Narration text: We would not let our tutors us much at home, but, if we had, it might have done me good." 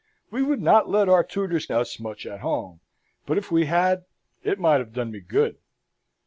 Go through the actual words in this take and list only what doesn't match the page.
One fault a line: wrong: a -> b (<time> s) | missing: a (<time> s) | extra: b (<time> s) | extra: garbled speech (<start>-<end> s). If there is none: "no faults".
no faults